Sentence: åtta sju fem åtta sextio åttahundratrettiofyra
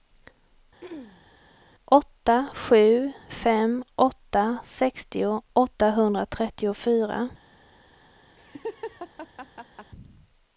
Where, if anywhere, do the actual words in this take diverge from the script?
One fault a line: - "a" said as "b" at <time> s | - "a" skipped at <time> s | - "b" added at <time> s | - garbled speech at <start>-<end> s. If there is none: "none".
none